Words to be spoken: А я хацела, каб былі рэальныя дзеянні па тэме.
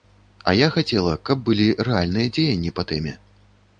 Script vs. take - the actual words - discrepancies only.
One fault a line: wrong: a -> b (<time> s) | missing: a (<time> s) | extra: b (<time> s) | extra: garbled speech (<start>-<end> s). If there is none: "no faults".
no faults